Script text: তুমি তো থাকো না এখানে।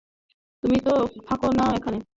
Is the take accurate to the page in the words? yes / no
yes